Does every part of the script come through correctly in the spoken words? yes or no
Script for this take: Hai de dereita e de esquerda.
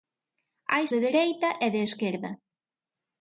yes